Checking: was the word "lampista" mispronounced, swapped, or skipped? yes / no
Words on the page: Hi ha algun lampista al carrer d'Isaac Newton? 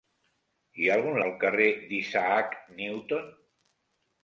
yes